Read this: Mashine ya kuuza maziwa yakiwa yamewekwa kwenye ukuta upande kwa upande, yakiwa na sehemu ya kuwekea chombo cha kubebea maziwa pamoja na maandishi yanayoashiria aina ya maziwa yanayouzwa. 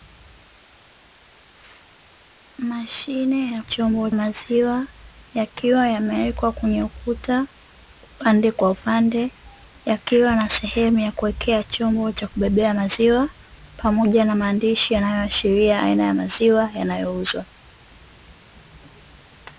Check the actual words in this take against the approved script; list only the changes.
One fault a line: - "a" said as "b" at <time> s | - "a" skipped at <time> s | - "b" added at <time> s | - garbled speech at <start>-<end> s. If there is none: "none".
- "kuuza" said as "chombo" at 3.6 s